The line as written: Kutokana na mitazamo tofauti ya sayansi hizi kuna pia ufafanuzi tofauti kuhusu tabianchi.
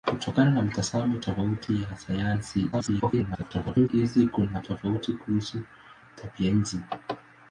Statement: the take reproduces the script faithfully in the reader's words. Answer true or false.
false